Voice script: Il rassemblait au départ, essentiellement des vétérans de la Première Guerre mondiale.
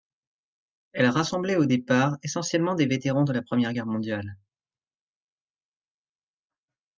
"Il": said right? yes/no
no